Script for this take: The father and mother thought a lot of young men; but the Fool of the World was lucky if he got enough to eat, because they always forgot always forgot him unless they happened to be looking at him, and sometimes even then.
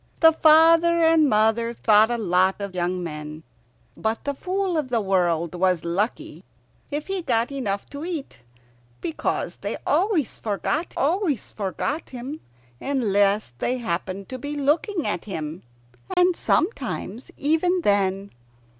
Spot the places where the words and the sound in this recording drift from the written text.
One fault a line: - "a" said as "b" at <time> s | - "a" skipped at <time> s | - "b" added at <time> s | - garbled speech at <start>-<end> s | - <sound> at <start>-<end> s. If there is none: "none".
- dropout at 16.1-16.2 s